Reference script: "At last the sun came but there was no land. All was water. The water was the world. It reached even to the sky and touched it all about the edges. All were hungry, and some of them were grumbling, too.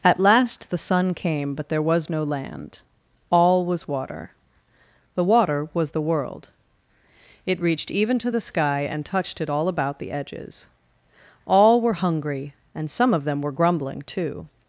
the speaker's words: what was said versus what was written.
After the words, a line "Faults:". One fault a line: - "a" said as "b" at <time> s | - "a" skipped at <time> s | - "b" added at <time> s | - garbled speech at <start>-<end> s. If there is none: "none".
"At last the sun came but there was no land. All was water. The water was the world. It reached even to the sky and touched it all about the edges. All were hungry, and some of them were grumbling, too.
Faults:
none